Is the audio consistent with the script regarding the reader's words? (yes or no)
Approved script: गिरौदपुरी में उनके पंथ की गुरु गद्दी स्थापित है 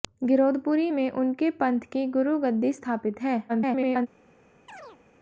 no